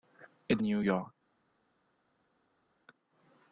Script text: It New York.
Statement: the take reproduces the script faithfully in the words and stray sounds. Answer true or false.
true